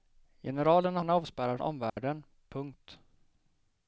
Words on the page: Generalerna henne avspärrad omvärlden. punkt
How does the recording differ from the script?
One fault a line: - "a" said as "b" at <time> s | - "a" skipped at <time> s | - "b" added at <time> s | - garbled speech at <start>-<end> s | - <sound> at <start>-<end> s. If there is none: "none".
- dropout at 1.9-2.0 s